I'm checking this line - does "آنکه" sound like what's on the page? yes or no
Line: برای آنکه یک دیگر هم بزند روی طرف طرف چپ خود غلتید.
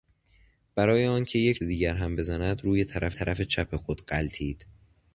yes